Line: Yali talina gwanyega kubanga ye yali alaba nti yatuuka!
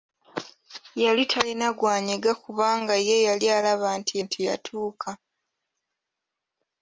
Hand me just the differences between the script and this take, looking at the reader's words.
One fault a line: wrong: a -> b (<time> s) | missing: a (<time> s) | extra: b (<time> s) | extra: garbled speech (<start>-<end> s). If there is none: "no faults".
extra: nti (4.2 s)